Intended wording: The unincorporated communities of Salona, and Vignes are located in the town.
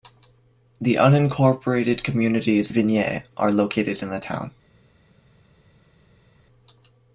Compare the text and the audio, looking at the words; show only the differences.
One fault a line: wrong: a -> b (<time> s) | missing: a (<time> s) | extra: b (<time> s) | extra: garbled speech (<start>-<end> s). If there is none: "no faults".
missing: of Salona and (2.7 s)